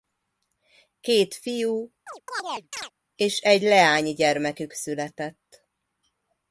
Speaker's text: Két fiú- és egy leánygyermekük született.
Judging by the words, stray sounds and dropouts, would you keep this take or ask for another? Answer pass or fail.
fail